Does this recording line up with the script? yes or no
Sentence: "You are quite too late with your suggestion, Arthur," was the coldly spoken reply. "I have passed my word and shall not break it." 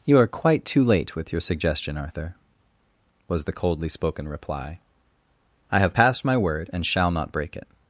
yes